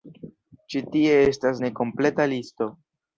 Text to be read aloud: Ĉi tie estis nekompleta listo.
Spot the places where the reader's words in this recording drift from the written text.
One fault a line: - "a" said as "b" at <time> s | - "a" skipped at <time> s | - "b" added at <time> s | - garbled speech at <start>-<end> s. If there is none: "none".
- "estis" said as "estas" at 1.2 s